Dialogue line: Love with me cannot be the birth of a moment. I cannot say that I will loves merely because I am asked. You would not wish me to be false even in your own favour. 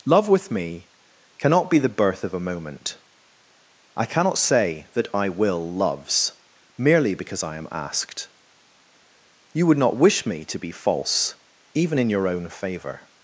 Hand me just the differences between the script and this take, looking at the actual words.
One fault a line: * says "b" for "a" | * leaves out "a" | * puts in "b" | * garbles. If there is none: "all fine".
all fine